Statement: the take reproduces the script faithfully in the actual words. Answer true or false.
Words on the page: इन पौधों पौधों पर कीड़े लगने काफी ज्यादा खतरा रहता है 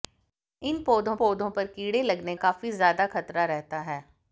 true